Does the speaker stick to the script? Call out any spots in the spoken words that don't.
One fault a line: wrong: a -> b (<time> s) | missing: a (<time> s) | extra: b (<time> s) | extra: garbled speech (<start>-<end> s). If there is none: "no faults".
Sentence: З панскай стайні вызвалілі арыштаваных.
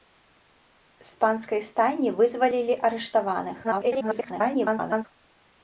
extra: garbled speech (3.6-5.1 s)